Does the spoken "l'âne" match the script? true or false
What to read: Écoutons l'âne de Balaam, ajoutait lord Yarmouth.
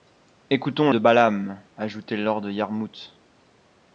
false